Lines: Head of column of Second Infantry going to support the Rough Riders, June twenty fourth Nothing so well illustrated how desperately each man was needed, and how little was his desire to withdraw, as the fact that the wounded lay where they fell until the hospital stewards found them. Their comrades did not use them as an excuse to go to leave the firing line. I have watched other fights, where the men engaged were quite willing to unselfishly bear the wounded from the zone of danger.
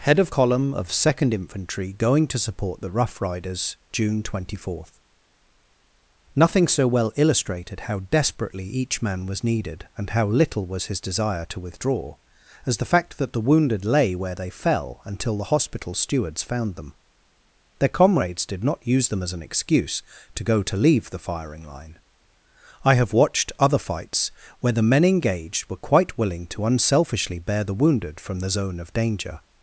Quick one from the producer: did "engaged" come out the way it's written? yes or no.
yes